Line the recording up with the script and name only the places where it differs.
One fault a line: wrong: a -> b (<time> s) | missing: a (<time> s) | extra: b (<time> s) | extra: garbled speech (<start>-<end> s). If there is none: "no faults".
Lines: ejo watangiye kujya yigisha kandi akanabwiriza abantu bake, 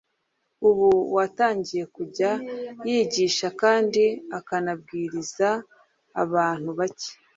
wrong: ejo -> ubu (0.7 s)